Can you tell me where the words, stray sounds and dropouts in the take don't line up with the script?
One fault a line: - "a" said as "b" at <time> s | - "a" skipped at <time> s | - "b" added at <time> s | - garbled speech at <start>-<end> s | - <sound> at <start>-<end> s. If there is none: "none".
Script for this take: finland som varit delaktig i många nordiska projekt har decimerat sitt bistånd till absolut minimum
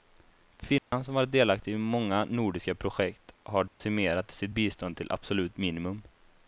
- dropout at 0.8-0.9 s
- dropout at 3.7-3.8 s